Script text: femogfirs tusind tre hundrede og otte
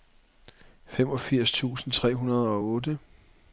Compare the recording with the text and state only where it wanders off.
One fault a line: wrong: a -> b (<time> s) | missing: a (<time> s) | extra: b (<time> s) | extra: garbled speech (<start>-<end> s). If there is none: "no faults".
no faults